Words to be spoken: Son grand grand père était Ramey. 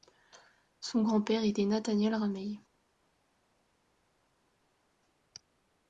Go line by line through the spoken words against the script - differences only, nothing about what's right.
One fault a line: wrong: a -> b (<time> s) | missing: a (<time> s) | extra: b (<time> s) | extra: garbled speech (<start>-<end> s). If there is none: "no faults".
missing: grand (1.2 s)
extra: Nathaniel (1.6 s)